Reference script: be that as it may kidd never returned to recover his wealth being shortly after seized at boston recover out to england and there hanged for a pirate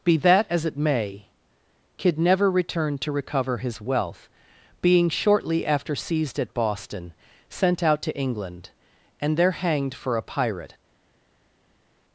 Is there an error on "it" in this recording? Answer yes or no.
no